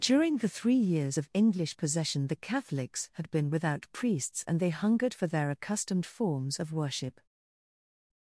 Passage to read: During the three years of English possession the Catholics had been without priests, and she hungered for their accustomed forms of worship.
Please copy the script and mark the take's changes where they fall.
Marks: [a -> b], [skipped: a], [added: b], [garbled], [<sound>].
During the three years of English possession the Catholics had been without priests, and [she -> they] hungered for their accustomed forms of worship.